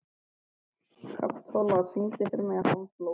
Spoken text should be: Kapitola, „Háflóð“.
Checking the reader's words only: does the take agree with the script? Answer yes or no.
no